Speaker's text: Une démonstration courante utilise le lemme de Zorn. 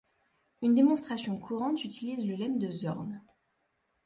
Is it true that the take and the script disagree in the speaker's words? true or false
false